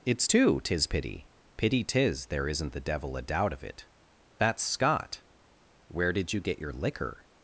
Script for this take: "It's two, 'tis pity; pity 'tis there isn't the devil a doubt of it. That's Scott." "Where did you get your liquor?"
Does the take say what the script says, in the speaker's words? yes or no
yes